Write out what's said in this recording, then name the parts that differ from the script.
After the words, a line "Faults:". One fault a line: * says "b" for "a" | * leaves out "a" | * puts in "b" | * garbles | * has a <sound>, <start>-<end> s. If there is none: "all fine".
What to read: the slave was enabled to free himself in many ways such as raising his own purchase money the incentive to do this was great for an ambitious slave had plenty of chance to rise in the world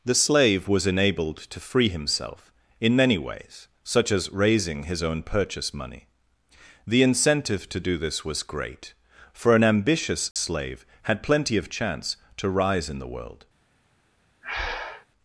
the slave was enabled to free himself in many ways such as raising his own purchase money the incentive to do this was great for an ambitious slave had plenty of chance to rise in the world
Faults:
* has a dropout, 10.3-10.4 s
* has a breath, 14.4-15.1 s